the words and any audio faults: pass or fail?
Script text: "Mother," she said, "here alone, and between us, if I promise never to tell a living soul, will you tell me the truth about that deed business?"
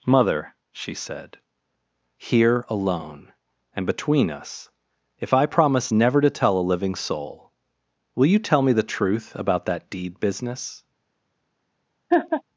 fail